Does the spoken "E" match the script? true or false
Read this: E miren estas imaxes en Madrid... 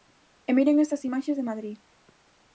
true